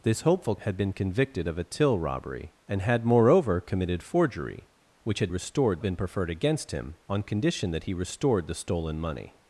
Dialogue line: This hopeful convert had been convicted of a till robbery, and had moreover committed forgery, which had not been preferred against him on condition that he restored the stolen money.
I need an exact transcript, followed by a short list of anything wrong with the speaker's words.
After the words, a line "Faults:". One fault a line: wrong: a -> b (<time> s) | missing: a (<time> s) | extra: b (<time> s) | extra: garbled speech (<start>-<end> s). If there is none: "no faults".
This hopeful had been convicted of a till robbery, and had moreover committed forgery, which had restored been preferred against him on condition that he restored the stolen money.
Faults:
missing: convert (0.6 s)
wrong: not -> restored (5.3 s)